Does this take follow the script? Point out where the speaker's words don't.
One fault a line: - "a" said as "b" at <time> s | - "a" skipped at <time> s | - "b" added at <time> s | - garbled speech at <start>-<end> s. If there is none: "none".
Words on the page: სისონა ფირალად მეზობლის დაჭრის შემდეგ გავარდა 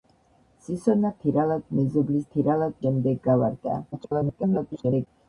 - "დაჭრის" said as "ფირალად" at 2.4 s
- garbled speech at 3.9-5.1 s